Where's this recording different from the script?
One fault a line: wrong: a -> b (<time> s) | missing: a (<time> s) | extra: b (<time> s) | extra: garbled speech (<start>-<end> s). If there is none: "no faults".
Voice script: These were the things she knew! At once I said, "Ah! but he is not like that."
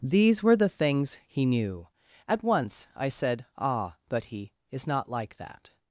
wrong: she -> he (1.3 s)